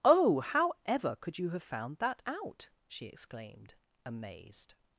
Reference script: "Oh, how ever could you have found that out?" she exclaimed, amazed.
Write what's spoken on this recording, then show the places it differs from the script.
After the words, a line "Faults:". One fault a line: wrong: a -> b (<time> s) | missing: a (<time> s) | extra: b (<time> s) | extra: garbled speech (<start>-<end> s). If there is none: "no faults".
"Oh, how ever could you have found that out?" she exclaimed, amazed.
Faults:
no faults